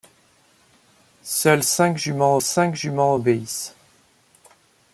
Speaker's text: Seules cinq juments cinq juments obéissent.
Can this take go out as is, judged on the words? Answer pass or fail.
pass